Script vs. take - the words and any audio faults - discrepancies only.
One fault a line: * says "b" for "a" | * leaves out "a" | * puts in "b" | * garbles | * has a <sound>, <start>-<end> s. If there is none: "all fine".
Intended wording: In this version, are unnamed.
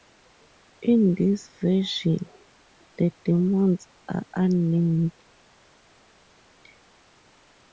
* puts in "the demons"